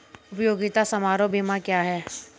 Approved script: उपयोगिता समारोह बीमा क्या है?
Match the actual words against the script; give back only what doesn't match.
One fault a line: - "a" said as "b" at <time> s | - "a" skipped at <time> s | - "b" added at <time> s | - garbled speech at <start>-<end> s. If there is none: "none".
none